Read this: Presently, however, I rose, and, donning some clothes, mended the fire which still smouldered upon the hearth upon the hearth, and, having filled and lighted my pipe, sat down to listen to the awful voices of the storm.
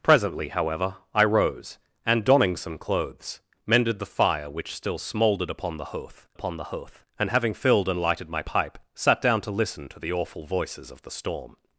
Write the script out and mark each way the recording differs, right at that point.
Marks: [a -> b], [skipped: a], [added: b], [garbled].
Presently, however, I rose, and, donning some clothes, mended the fire which still smouldered upon the hearth upon the hearth, and, having filled and lighted my pipe, sat down to listen to the awful voices of the storm.